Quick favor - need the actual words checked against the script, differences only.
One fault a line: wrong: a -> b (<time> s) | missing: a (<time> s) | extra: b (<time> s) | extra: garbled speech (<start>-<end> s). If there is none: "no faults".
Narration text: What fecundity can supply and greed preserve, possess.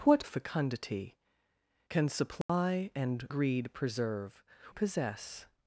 no faults